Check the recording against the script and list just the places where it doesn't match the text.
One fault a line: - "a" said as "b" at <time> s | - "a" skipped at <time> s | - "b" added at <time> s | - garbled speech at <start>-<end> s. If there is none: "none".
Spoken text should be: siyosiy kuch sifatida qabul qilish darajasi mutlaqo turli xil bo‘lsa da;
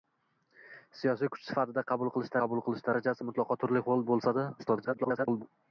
- "qabul qilish" added at 2.5 s
- garbled speech at 4.6-5.4 s